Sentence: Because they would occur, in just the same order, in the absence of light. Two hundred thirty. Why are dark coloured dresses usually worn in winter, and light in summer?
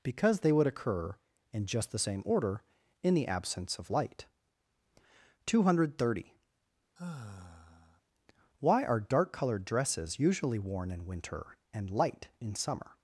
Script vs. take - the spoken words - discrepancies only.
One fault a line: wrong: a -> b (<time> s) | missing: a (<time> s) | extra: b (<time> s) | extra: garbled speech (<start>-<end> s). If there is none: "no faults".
no faults